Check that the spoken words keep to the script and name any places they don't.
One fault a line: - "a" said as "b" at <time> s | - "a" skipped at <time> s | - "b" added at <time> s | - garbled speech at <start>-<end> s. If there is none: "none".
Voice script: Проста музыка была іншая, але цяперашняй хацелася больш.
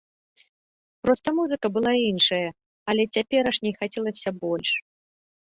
none